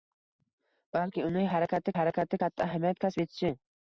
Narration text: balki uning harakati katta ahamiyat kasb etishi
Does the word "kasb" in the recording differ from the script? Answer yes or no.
no